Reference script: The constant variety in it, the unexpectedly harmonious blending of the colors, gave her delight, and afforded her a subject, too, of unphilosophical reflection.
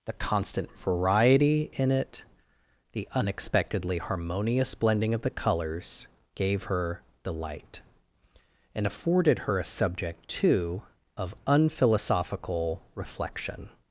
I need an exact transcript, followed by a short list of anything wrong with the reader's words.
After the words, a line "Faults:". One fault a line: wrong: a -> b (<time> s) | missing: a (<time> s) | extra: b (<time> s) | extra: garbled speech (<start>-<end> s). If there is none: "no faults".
The constant variety in it, the unexpectedly harmonious blending of the colors, gave her delight, and afforded her a subject, too, of unphilosophical reflection.
Faults:
no faults